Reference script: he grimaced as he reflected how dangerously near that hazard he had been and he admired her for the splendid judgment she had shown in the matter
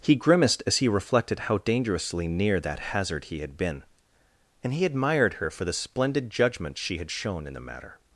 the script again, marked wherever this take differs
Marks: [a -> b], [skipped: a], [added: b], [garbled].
he grimaced as he reflected how dangerously near that hazard he had been and he admired her for the splendid judgment she had shown in the matter